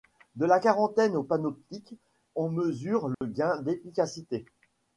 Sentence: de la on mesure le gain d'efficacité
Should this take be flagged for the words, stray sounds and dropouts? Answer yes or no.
yes